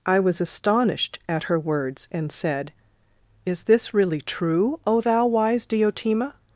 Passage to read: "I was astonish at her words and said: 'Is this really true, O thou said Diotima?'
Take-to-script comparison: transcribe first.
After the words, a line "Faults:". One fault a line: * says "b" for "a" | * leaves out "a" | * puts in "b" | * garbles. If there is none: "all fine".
"I was astonished at her words and said: 'Is this really true, O thou wise Diotima?'
Faults:
* says "astonished" for "astonish"
* says "wise" for "said"